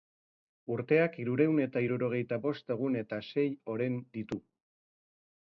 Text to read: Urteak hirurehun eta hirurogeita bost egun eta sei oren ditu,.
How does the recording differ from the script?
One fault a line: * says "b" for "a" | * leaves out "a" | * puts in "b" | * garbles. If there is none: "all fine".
all fine